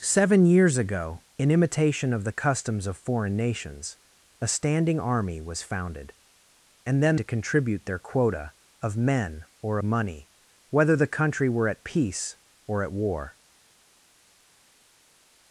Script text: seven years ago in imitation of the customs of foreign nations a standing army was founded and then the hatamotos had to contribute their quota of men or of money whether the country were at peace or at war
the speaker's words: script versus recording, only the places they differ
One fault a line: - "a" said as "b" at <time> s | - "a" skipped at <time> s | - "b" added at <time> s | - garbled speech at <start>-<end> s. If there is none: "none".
- "the hatamotos had" skipped at 7.2 s
- "of" skipped at 9.8 s